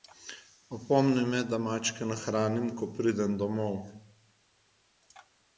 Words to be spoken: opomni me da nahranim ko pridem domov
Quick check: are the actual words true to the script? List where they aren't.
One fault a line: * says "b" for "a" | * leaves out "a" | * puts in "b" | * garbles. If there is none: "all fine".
* puts in "mačke"